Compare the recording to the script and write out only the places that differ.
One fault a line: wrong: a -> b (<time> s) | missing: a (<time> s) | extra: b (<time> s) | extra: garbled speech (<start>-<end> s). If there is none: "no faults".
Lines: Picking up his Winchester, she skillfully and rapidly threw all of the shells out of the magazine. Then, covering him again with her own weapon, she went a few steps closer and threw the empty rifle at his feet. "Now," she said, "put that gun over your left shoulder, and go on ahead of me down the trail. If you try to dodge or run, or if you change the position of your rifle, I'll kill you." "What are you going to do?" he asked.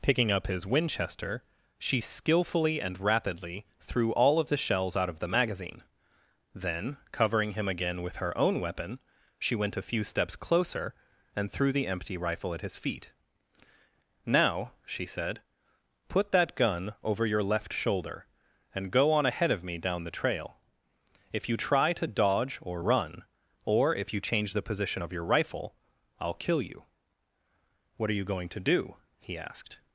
no faults